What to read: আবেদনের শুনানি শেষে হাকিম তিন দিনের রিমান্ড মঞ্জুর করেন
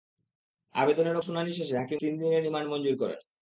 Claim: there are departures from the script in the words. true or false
false